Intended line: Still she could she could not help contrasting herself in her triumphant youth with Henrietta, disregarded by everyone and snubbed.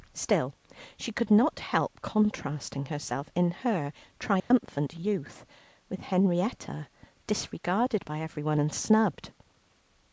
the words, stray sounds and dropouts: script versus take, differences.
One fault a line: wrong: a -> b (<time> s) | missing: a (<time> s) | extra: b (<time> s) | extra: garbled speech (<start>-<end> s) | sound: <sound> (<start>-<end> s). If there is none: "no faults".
missing: she could (1.3 s)
sound: dropout (4.4-4.5 s)